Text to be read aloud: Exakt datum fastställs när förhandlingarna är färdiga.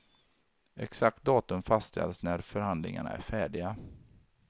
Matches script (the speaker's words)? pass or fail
pass